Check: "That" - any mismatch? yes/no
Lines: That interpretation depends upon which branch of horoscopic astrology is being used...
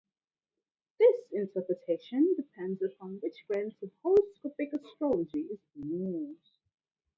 yes